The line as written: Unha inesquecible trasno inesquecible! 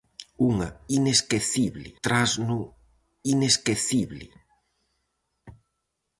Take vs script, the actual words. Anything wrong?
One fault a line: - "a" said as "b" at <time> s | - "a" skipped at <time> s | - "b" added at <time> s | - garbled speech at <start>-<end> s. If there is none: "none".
none